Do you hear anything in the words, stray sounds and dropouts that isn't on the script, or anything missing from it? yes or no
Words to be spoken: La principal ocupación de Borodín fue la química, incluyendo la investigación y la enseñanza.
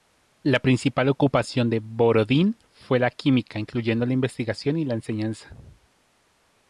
no